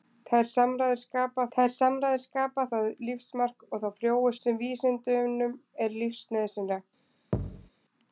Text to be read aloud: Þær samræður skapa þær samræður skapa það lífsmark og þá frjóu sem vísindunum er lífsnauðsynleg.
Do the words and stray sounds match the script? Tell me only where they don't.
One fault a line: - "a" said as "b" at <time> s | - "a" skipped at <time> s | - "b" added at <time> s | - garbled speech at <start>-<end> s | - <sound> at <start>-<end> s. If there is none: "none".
- thud at 7.3-7.7 s